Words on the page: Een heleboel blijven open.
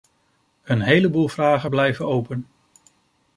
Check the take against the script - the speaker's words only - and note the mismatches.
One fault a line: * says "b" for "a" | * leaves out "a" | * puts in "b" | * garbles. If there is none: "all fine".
* puts in "vragen"